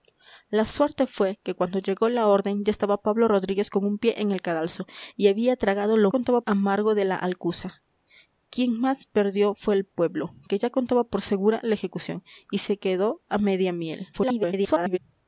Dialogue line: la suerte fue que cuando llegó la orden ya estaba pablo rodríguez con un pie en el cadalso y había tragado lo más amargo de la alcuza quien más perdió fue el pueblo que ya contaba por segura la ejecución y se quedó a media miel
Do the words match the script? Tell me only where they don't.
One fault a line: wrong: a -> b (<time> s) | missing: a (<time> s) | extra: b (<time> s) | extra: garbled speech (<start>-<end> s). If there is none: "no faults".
wrong: más -> contaba (6.1 s)
extra: garbled speech (14.1-15.0 s)